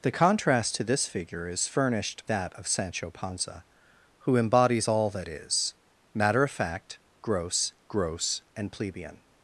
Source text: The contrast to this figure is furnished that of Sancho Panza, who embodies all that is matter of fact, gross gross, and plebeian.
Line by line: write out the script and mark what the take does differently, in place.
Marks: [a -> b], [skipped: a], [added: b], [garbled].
The contrast to this figure is furnished that of Sancho Panza, who embodies all that is matter of fact, gross gross, and plebeian.